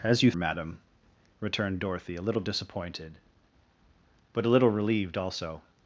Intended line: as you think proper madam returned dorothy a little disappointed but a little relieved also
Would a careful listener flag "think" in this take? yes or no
yes